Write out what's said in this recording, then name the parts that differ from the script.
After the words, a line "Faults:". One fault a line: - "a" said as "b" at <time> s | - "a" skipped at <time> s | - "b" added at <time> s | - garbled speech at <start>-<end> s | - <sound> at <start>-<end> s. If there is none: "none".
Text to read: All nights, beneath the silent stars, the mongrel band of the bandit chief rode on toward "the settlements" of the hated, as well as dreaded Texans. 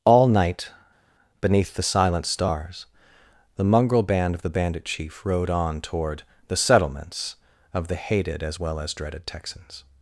All night, beneath the silent stars, the mongrel band of the bandit chief rode on toward "the settlements" of the hated, as well as dreaded Texans.
Faults:
- "nights" said as "night" at 0.3 s